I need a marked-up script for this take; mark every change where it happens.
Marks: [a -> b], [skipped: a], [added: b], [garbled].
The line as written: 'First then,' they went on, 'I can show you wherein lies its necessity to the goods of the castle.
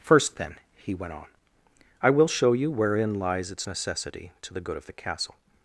'First then,' [they -> he] went on, 'I [can -> will] show you wherein lies its necessity to the [goods -> good] of the castle.